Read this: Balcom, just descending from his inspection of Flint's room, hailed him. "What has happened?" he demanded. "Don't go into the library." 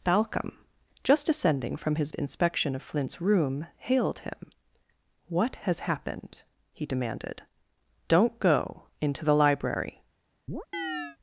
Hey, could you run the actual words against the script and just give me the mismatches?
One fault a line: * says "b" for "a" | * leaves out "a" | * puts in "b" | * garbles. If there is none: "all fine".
all fine